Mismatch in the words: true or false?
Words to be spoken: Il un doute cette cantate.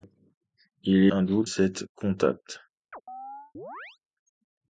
false